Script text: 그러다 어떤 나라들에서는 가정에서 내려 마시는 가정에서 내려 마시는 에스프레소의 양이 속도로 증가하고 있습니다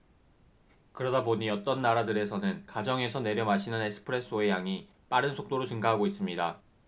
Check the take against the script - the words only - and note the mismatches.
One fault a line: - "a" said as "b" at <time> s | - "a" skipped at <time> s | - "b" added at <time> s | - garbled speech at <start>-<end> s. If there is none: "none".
- "보니" added at 1.2 s
- "가정에서 내려 마시는" skipped at 3.8 s
- "빠른" added at 5.1 s